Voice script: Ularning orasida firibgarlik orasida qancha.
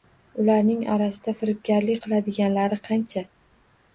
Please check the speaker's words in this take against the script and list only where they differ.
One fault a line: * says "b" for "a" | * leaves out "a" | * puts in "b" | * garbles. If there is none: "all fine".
* says "qiladiganlari" for "orasida"